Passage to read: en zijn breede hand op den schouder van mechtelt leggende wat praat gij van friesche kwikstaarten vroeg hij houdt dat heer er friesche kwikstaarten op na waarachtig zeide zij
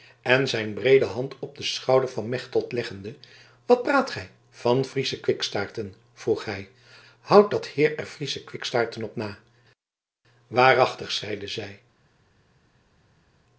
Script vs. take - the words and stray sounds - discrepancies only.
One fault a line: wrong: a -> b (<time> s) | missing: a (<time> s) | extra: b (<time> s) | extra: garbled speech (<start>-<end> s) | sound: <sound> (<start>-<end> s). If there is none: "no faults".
no faults